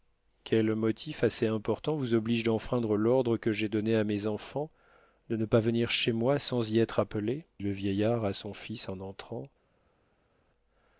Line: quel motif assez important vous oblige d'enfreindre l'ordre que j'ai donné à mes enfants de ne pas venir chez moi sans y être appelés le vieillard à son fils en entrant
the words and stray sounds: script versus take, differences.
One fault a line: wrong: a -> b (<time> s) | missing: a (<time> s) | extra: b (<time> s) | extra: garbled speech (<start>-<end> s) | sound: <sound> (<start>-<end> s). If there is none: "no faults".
no faults